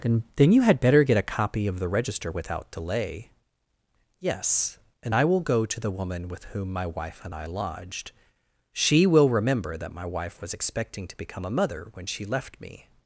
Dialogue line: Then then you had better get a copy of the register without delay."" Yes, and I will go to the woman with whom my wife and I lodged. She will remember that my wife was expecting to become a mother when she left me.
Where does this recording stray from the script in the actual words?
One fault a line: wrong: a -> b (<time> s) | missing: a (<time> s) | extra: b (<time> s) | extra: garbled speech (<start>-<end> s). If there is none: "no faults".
no faults